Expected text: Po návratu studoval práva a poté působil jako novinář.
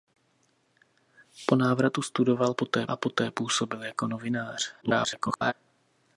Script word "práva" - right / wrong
wrong